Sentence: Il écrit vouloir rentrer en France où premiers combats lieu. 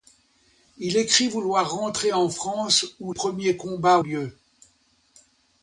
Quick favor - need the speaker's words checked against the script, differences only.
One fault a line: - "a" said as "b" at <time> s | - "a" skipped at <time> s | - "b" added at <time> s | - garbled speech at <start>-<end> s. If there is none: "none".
none